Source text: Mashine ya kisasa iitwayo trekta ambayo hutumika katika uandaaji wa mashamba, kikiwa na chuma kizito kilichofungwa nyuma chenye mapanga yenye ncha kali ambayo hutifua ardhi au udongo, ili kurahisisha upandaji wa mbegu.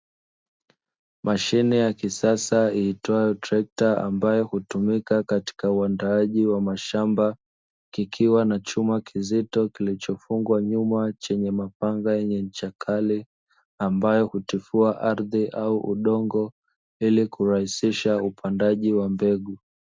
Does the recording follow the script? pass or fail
pass